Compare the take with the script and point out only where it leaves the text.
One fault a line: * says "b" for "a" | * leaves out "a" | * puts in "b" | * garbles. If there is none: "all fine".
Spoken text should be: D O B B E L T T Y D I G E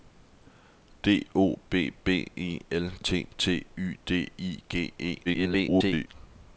* garbles